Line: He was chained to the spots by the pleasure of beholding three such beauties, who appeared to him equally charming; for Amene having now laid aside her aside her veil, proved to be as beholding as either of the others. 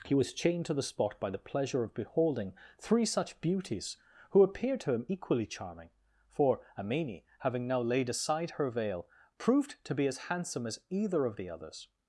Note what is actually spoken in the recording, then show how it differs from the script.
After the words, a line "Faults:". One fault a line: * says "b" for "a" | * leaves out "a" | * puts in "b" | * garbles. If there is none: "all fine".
He was chained to the spot by the pleasure of beholding three such beauties, who appeared to him equally charming; for Amene having now laid aside her veil, proved to be as handsome as either of the others.
Faults:
* says "spot" for "spots"
* leaves out "aside her"
* says "handsome" for "beholding"